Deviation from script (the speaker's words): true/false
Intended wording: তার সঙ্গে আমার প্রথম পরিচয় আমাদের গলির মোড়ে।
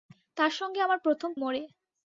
true